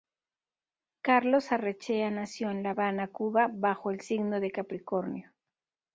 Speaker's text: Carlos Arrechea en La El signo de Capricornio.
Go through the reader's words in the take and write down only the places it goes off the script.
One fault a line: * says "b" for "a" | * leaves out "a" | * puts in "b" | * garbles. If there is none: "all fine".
* puts in "nació"
* puts in "Habana Cuba bajo"